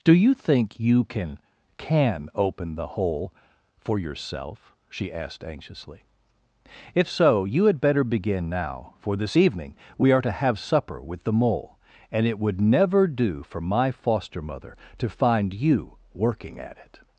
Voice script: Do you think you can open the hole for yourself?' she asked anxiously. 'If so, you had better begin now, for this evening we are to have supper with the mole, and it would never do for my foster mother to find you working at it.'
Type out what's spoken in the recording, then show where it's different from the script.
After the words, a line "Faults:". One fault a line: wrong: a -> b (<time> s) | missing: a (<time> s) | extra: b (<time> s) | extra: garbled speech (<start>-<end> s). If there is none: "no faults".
Do you think you can can open the hole for yourself?' she asked anxiously. 'If so, you had better begin now, for this evening we are to have supper with the mole, and it would never do for my foster mother to find you working at it.'
Faults:
extra: can (1.8 s)